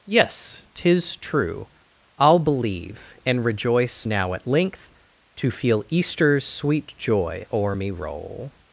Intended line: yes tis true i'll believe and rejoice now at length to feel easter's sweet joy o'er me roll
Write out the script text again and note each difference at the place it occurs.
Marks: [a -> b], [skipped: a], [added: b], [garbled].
yes tis true i'll believe and rejoice now at length to feel easter's sweet joy o'er me roll